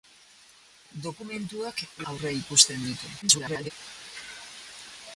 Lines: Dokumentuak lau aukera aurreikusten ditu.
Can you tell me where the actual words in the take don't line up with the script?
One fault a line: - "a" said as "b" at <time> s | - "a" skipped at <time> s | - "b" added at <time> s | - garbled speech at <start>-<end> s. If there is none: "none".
- "lau aukera" skipped at 1.8 s
- garbled speech at 3.2-3.7 s